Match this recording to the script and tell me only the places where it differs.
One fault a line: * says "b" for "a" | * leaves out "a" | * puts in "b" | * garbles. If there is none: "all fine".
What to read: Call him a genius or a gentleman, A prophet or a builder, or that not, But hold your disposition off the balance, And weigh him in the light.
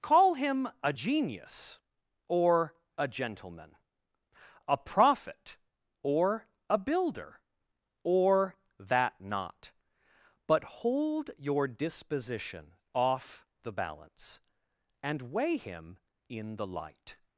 all fine